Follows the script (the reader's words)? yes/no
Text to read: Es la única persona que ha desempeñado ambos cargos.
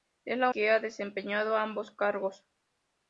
no